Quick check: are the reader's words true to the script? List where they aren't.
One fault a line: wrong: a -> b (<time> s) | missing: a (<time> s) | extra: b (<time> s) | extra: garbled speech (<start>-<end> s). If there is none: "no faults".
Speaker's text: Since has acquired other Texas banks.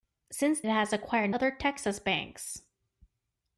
no faults